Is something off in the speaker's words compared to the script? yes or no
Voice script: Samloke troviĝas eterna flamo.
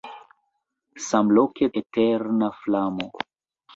yes